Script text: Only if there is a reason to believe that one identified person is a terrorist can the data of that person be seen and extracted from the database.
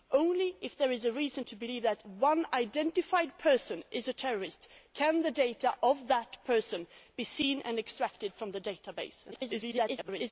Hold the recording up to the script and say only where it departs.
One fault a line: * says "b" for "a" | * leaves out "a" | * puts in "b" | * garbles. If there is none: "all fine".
* garbles